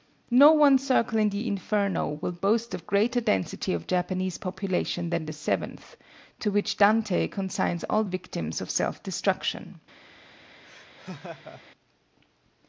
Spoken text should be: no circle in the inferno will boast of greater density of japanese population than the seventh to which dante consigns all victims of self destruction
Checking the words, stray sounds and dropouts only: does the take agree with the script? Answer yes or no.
no